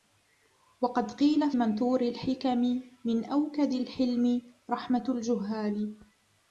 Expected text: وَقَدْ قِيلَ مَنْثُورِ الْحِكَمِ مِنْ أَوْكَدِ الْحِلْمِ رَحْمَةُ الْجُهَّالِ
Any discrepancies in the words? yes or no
no